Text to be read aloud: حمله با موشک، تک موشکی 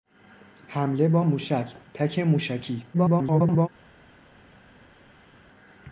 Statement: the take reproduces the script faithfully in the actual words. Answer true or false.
false